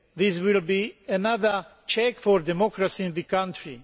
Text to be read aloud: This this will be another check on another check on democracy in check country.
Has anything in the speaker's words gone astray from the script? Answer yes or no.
yes